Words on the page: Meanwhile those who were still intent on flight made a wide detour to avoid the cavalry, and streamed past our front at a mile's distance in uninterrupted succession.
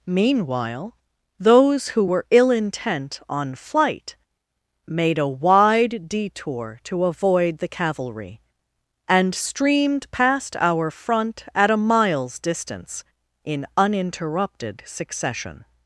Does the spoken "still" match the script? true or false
false